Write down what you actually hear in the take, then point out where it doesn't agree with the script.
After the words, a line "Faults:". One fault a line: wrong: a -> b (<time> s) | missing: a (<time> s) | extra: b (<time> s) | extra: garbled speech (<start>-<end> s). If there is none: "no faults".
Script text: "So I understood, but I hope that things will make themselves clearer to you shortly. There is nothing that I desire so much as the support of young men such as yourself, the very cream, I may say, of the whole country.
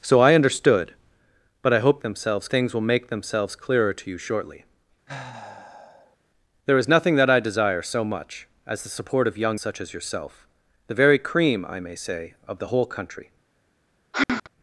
"So I understood, but I hope themselves things will make themselves clearer to you shortly. There is nothing that I desire so much as the support of young such as yourself, the very cream, I may say, of the whole country.
Faults:
wrong: that -> themselves (2.0 s)
missing: men (9.6 s)